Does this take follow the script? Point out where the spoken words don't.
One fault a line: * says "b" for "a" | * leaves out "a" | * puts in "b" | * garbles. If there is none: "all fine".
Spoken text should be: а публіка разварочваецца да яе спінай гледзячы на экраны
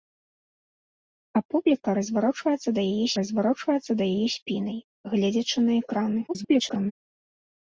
* puts in "разварочваецца да яе"
* garbles